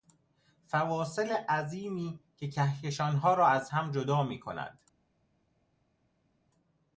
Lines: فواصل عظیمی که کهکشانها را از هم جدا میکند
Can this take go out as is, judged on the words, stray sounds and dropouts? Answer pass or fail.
pass